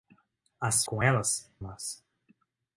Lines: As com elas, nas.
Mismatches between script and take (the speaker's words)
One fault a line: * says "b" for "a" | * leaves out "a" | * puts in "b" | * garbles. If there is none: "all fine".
all fine